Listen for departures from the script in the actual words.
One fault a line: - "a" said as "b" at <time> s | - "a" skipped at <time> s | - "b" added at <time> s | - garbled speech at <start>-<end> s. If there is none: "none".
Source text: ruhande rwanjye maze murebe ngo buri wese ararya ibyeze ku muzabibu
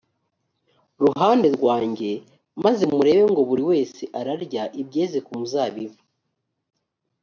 none